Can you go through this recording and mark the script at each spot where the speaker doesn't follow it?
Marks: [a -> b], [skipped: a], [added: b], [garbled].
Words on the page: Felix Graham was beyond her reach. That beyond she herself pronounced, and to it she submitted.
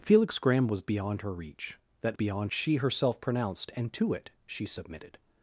Felix Graham was beyond her reach. That beyond she herself pronounced, and to it she submitted.